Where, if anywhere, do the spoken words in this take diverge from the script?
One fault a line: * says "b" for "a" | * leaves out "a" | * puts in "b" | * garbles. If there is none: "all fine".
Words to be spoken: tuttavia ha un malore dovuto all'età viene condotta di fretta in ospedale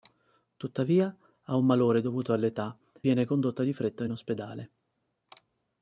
all fine